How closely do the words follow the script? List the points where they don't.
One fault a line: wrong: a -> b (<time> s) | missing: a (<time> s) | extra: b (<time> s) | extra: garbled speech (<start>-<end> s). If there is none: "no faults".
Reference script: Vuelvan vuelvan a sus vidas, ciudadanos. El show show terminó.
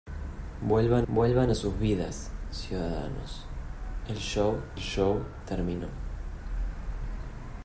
no faults